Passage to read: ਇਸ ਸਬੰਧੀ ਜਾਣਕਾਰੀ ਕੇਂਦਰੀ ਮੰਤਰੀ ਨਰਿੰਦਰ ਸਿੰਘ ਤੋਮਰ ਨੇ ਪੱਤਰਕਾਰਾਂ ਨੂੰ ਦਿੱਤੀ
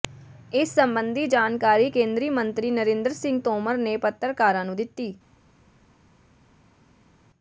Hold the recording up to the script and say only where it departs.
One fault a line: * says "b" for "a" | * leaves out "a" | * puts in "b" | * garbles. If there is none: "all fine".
all fine